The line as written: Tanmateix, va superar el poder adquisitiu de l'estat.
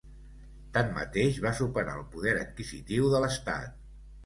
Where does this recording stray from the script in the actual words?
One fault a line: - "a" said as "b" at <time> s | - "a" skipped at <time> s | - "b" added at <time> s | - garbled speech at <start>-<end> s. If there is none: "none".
none